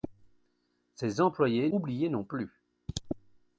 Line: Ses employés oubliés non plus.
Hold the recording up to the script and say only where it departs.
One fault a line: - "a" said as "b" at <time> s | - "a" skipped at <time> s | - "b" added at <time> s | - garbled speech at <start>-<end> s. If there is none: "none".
none